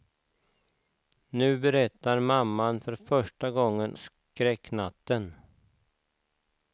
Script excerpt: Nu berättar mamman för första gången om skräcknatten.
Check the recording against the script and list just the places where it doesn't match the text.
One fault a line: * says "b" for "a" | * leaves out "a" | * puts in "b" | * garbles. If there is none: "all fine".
* leaves out "om"